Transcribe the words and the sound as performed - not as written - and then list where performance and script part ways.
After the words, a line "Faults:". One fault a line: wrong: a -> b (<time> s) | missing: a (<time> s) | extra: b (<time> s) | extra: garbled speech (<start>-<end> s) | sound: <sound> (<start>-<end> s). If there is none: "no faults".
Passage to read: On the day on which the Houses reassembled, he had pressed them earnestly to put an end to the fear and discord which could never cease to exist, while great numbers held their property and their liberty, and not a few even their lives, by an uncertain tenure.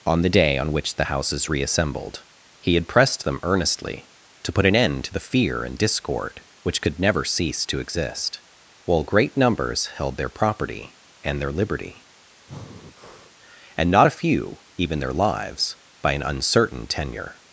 On the day on which the Houses reassembled, he had pressed them earnestly to put an end to the fear and discord which could never cease to exist, while great numbers held their property and their liberty, and not a few even their lives, by an uncertain tenure.
Faults:
sound: breath (12.5-13.4 s)